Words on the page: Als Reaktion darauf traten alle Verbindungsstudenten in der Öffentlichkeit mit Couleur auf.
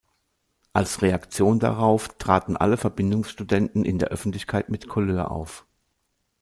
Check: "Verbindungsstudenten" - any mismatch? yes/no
no